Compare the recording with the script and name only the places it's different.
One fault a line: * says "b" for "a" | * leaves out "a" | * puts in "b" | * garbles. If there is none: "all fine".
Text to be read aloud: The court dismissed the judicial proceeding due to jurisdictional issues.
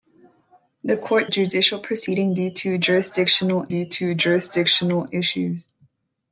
* says "judicial proceeding due to jurisdictional" for "dismissed the judicial proceeding"